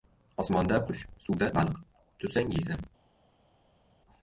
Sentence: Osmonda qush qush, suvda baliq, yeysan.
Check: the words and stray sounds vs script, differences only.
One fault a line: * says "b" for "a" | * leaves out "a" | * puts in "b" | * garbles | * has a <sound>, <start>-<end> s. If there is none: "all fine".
* leaves out "qush"
* puts in "tutsang"